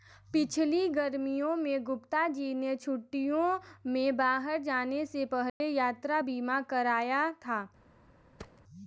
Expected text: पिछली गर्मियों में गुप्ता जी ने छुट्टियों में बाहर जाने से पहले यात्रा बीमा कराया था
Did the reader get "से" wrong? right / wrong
right